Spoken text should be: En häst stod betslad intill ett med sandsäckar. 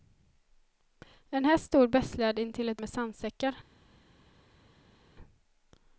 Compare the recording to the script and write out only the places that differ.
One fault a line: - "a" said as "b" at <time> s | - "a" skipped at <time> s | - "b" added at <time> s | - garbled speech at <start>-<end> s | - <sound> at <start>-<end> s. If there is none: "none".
none